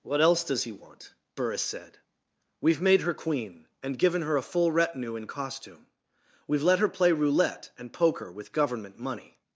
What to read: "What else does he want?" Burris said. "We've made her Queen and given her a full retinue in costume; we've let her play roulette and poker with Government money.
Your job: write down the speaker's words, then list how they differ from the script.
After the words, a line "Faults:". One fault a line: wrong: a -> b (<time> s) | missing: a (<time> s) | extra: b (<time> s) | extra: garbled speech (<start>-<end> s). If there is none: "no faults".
"What else does he want?" Burris said. "We've made her Queen and given her a full retinue in costume; we've let her play roulette and poker with Government money.
Faults:
no faults